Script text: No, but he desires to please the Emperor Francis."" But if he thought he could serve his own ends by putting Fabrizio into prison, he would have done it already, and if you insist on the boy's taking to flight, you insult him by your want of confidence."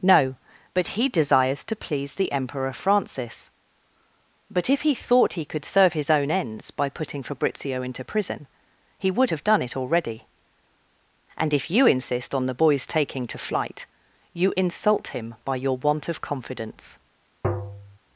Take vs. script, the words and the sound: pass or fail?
fail